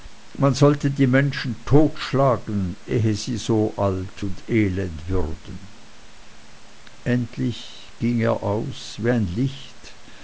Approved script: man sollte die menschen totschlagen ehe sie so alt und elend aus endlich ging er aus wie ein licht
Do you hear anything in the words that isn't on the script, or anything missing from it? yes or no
yes